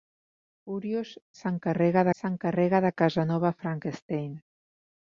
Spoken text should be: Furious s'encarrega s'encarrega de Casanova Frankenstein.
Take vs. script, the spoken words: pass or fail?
pass